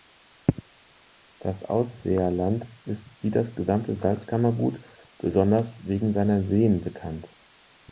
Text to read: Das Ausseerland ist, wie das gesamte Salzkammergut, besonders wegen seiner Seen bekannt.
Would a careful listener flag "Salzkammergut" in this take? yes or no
no